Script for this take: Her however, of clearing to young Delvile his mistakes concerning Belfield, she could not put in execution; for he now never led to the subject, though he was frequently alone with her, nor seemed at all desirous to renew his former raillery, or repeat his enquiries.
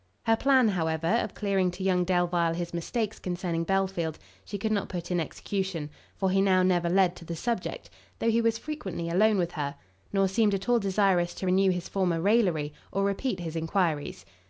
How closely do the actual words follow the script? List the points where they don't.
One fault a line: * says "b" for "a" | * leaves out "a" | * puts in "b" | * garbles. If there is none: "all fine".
* puts in "plan"